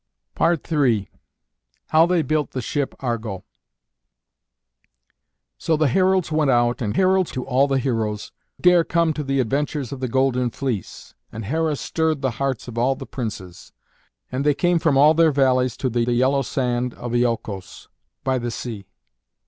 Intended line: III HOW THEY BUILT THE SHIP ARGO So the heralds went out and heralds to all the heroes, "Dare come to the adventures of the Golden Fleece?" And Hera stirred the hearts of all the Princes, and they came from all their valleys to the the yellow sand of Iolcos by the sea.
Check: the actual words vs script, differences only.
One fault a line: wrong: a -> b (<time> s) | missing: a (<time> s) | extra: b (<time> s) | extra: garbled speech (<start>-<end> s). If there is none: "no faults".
no faults